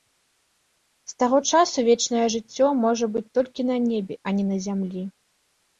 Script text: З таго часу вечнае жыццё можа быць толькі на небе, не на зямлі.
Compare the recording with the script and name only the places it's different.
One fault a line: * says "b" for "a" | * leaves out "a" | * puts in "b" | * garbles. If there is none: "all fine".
* puts in "а"